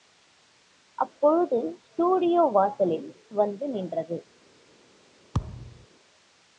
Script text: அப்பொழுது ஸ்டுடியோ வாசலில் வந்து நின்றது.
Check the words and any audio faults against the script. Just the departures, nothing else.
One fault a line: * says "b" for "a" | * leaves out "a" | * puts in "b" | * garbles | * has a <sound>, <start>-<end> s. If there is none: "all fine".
* has a thud, 5.3-5.9 s